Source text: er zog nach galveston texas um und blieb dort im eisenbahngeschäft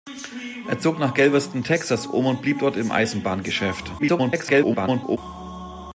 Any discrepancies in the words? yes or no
yes